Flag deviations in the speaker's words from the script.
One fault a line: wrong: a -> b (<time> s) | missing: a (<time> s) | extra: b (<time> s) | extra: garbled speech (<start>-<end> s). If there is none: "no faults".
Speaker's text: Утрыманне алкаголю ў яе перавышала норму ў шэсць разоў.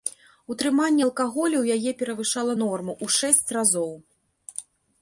no faults